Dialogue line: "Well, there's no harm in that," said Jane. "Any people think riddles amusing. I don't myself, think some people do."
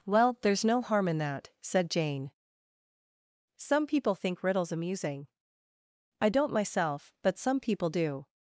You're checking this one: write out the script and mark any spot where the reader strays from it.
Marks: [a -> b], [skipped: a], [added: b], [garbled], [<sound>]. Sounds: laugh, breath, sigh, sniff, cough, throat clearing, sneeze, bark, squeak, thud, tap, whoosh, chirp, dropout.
"Well, there's no harm in that," said Jane. ["Any -> Some] people think riddles amusing. I don't myself, [think -> but] some people do."